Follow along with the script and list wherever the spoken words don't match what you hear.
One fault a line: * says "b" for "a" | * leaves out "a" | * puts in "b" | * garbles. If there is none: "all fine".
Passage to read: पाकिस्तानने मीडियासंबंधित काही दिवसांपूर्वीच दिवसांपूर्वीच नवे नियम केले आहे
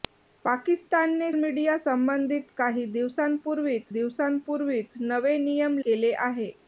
all fine